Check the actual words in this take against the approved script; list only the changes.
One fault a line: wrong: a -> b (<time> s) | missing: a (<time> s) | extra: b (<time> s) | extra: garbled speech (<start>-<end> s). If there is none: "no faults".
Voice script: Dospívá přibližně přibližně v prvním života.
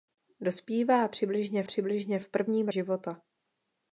no faults